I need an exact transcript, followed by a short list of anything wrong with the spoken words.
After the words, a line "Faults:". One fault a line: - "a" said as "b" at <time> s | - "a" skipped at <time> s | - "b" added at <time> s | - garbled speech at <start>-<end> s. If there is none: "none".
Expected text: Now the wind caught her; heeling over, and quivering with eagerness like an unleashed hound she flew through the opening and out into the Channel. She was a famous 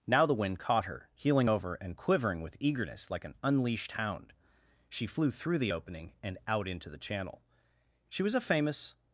Now the wind caught her; heeling over, and quivering with eagerness like an unleashed hound she flew through the opening and out into the Channel. She was a famous
Faults:
none